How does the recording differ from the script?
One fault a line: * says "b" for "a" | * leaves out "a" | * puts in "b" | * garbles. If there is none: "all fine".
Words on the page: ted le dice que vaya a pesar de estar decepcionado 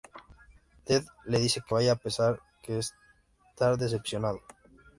all fine